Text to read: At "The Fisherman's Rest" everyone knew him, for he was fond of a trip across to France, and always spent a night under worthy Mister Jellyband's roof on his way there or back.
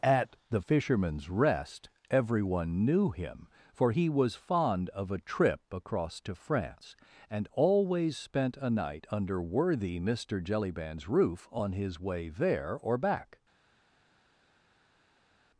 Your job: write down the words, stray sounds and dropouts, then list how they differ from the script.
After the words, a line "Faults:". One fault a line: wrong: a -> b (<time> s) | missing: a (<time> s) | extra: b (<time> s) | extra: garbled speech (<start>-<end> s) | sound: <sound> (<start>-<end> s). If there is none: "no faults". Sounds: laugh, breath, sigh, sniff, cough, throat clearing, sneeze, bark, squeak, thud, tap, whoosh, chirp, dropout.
At "The Fisherman's Rest" everyone knew him, for he was fond of a trip across to France, and always spent a night under worthy Mister Jellyband's roof on his way there or back.
Faults:
no faults